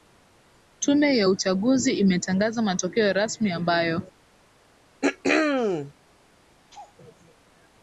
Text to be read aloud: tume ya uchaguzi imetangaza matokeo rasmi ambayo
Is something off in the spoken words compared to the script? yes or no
no